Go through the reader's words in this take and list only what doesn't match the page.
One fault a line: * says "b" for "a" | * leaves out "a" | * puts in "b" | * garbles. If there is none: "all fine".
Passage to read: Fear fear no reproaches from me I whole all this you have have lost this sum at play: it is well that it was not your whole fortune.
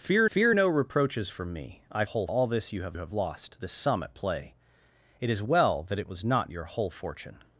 all fine